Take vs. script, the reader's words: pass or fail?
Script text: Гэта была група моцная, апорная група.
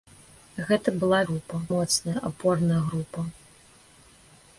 pass